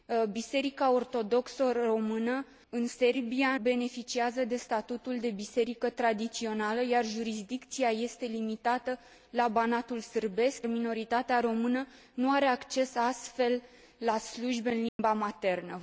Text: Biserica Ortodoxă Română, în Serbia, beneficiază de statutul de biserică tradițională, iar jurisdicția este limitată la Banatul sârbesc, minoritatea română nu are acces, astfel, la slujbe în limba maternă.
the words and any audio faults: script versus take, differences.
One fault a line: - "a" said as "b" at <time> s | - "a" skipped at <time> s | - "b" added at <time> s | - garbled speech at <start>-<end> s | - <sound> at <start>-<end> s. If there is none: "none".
- dropout at 14.9-15.0 s